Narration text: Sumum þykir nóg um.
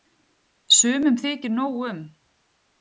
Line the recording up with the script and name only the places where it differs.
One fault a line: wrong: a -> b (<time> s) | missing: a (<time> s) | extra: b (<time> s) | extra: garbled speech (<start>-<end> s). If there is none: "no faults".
no faults